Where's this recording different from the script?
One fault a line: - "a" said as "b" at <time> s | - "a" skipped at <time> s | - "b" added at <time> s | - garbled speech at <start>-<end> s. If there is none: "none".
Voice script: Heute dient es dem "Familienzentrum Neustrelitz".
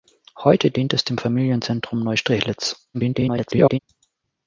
- garbled speech at 2.9-3.8 s